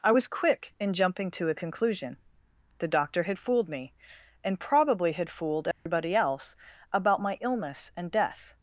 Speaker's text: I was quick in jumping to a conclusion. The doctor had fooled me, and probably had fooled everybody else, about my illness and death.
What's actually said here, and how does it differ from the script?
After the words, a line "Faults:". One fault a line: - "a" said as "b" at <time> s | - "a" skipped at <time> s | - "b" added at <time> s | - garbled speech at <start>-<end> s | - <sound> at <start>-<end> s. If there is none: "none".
I was quick in jumping to a conclusion. The doctor had fooled me, and probably had fooled everybody else, about my illness and death.
Faults:
- dropout at 5.7-5.9 s